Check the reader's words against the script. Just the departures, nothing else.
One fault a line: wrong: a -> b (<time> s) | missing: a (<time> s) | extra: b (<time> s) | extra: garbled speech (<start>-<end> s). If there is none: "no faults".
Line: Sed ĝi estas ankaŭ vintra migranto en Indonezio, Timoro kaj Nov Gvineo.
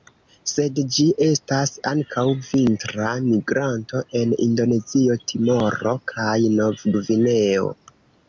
no faults